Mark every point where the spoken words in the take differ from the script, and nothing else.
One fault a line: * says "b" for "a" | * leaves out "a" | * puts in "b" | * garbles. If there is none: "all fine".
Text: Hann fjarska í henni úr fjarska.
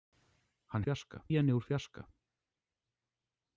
all fine